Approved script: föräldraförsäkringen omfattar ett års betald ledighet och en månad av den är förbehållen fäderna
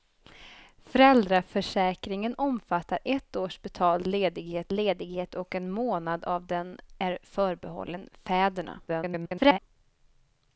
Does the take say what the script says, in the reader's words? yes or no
no